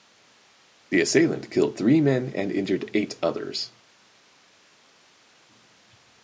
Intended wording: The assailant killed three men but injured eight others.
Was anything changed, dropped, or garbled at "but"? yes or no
yes